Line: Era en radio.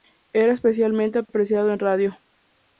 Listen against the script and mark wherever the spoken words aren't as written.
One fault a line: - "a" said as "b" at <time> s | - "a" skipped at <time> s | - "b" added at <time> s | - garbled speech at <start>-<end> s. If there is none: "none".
- "especialmente apreciado" added at 0.5 s